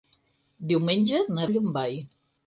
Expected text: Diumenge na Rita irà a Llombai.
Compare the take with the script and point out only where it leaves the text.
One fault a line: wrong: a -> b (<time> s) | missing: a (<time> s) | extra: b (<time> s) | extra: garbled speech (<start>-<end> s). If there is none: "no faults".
missing: Rita irà (1.4 s)